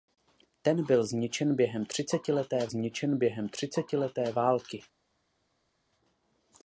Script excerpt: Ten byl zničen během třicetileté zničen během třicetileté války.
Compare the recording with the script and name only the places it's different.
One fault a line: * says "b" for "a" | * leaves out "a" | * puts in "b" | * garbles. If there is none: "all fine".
all fine